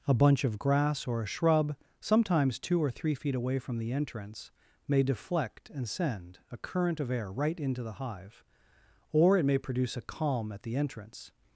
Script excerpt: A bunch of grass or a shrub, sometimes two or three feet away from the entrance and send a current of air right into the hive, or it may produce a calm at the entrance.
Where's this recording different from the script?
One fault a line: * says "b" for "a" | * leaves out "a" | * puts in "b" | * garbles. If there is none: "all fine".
* puts in "may deflect"